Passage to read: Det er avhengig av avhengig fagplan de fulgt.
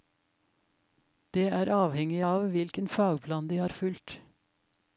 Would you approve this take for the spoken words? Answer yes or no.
no